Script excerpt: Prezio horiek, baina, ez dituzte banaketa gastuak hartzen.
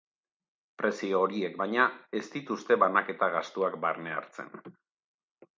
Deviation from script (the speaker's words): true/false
true